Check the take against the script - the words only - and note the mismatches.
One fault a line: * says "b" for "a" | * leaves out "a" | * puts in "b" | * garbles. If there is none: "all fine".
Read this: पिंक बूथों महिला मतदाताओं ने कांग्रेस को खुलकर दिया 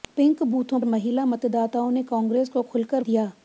all fine